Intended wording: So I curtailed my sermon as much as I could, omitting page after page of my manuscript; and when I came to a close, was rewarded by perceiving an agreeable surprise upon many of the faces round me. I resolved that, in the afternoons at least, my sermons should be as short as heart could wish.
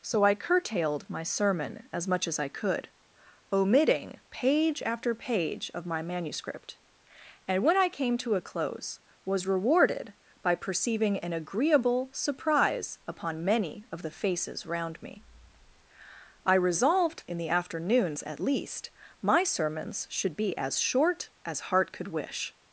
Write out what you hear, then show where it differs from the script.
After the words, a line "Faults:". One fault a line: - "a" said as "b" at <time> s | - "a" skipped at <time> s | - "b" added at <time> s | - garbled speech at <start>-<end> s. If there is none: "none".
So I curtailed my sermon as much as I could, omitting page after page of my manuscript; and when I came to a close, was rewarded by perceiving an agreeable surprise upon many of the faces round me. I resolved in the afternoons at least, my sermons should be as short as heart could wish.
Faults:
- "that" skipped at 17.3 s